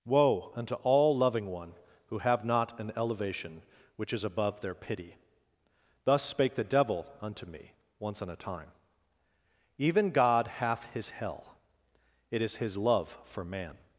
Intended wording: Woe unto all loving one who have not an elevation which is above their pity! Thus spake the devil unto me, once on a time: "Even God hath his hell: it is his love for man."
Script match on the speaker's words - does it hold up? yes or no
yes